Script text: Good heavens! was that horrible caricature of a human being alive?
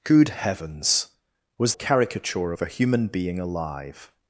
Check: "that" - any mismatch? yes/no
yes